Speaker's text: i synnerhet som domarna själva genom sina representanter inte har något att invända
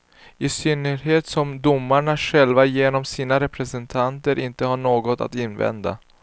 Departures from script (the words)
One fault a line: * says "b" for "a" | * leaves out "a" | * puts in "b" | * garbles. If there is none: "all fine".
all fine